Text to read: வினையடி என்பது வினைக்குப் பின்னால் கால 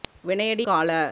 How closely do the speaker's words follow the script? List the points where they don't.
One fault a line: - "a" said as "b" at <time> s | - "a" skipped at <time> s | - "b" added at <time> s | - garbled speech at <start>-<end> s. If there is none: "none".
- "என்பது வினைக்குப் பின்னால்" skipped at 0.7 s